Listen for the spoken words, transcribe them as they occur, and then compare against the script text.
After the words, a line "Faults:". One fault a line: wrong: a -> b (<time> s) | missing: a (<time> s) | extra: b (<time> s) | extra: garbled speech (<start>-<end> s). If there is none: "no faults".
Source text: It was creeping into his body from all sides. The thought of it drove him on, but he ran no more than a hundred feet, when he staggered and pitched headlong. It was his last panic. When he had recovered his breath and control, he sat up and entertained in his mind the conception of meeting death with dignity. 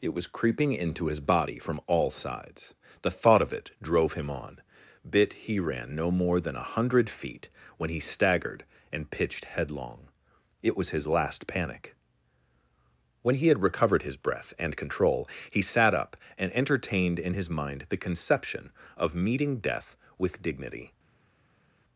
It was creeping into his body from all sides. The thought of it drove him on, bit he ran no more than a hundred feet, when he staggered and pitched headlong. It was his last panic. When he had recovered his breath and control, he sat up and entertained in his mind the conception of meeting death with dignity.
Faults:
wrong: but -> bit (5.1 s)